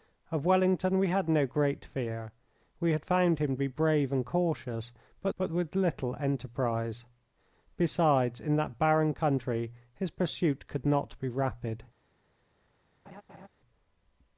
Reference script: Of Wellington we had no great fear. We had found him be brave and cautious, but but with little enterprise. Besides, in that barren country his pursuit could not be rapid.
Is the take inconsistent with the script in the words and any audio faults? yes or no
yes